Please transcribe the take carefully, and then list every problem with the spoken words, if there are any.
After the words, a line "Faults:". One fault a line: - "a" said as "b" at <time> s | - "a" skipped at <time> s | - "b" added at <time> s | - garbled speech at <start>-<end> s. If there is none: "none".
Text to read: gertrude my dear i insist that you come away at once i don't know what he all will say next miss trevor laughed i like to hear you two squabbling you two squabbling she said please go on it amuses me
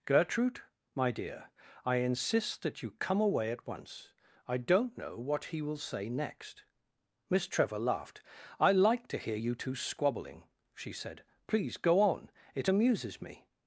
gertrude my dear i insist that you come away at once i don't know what he will say next miss trevor laughed i like to hear you two squabbling she said please go on it amuses me
Faults:
- "all" skipped at 5.6 s
- "you two squabbling" skipped at 10.5 s